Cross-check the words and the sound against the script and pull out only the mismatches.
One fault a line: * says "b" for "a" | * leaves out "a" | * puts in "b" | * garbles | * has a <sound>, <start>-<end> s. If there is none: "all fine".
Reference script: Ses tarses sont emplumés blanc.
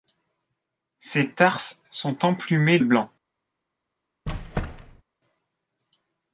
* has a squeak, 4.3-5.0 s